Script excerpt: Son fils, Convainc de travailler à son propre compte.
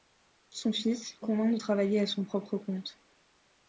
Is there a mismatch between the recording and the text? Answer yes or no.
no